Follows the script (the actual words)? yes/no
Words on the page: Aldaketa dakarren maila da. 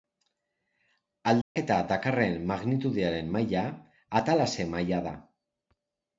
no